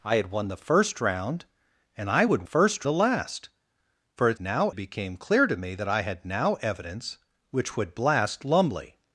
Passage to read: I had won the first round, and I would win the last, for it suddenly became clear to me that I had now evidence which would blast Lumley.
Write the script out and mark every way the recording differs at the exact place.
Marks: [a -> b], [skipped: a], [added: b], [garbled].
I had won the first round, and I would [win -> first] the last, for it [suddenly -> now] became clear to me that I had now evidence which would blast Lumley.